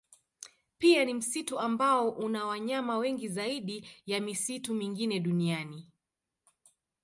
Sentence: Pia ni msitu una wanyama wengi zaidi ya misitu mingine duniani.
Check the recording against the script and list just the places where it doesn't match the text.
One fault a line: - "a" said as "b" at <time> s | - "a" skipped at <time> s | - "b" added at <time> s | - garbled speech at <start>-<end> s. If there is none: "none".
- "ambao" added at 1.6 s